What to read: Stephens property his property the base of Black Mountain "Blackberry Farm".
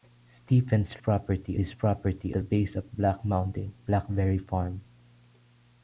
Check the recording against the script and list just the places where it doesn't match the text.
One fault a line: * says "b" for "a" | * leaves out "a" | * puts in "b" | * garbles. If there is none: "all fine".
all fine